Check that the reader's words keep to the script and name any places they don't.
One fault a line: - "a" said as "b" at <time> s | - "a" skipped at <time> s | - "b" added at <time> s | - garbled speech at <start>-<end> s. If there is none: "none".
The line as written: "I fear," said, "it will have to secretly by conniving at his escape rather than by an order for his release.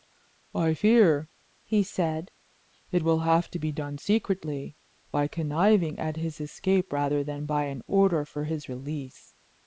- "he" added at 1.6 s
- "be done" added at 3.6 s